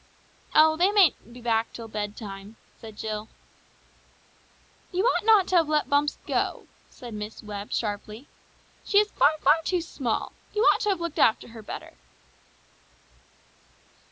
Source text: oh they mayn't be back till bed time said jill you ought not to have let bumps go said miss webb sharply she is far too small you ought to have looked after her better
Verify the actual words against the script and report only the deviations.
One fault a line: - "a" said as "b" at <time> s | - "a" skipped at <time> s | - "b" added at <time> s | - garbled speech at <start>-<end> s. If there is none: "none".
- "far" added at 9.4 s